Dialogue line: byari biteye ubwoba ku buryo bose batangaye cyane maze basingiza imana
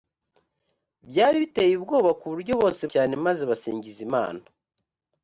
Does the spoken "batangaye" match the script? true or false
false